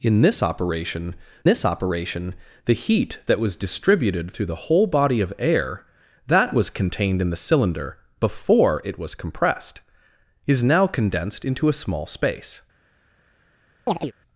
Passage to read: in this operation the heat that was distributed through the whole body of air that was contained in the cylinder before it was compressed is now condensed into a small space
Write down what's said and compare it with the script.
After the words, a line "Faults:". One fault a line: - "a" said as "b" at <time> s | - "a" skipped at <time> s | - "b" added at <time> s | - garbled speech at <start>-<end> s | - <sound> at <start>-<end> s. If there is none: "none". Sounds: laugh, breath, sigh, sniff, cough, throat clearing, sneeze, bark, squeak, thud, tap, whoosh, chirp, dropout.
in this operation this operation the heat that was distributed through the whole body of air that was contained in the cylinder before it was compressed is now condensed into a small space
Faults:
- "this operation" added at 1.5 s
- chirp at 13.9-14.1 s